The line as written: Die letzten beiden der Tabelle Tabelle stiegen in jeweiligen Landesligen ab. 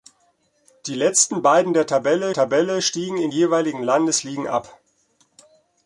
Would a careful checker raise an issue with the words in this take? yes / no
no